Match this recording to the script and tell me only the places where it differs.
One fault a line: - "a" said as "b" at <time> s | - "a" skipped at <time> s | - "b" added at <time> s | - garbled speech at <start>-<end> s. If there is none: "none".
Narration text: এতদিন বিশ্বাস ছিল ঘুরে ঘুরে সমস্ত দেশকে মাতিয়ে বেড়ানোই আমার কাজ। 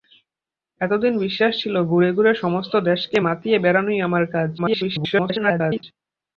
- garbled speech at 4.6-5.8 s